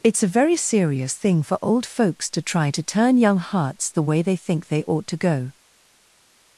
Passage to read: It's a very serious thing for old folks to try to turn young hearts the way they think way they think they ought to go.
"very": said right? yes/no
yes